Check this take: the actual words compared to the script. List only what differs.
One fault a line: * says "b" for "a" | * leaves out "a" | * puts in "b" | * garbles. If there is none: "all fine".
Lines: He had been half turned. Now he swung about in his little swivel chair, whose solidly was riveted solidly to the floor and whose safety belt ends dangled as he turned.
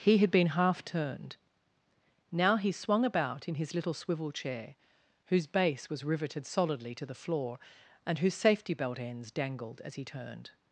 * says "base" for "solidly"